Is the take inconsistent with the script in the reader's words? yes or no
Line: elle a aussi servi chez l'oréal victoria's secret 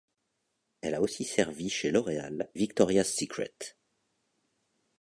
no